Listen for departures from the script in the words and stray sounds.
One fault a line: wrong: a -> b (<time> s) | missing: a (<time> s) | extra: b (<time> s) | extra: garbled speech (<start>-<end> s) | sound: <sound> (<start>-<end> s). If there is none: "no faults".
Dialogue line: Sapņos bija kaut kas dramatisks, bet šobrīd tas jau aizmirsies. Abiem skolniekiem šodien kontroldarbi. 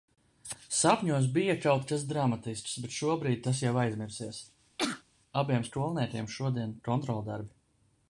sound: sneeze (4.8-5.0 s)